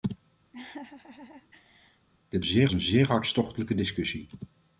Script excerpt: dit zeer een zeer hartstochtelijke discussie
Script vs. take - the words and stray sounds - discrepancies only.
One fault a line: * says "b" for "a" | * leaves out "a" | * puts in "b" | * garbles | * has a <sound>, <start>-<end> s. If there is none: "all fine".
* has a laugh, 0.5-2.1 s